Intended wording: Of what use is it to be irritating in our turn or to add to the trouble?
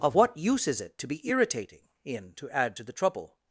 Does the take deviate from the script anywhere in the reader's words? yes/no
yes